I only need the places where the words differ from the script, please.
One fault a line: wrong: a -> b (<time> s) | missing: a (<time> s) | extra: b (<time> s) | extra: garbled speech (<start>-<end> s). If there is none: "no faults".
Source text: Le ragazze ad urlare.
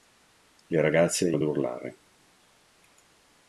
no faults